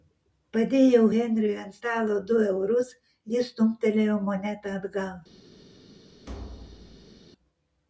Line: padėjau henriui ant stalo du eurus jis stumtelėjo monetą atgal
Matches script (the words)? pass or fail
pass